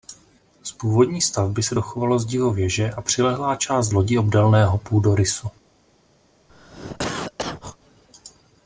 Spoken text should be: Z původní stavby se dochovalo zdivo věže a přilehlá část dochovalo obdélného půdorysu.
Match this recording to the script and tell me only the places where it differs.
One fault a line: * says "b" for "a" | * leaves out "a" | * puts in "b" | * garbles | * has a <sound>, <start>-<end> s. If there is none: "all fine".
* says "lodi" for "dochovalo"
* has a cough, 6.5-7.8 s